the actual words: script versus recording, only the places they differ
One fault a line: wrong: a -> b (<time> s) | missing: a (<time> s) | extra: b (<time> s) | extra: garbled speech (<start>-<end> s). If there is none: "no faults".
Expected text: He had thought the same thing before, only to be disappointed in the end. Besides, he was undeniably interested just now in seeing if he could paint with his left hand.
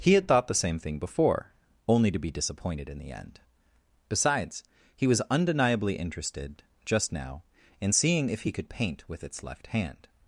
wrong: his -> its (9.2 s)